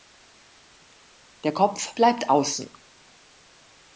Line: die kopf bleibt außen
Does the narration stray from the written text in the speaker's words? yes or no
yes